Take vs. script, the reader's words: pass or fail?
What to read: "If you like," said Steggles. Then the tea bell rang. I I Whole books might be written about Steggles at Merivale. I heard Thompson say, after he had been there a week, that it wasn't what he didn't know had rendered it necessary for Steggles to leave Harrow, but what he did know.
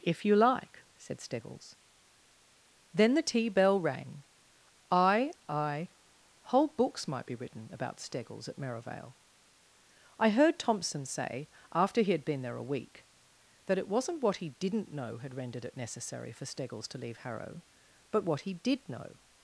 pass